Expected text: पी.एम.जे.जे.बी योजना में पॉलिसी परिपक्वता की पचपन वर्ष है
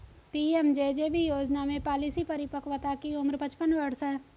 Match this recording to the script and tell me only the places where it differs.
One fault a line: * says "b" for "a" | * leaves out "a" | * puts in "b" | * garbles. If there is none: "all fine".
* puts in "उम्र"